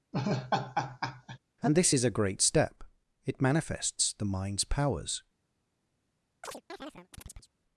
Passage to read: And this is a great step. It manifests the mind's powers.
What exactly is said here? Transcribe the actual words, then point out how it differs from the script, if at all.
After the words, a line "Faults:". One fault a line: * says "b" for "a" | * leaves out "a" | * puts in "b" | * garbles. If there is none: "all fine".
And this is a great step. It manifests the mind's powers.
Faults:
all fine